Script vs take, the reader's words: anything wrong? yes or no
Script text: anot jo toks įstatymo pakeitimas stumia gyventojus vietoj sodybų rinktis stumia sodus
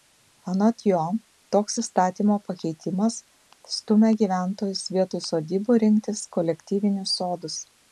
yes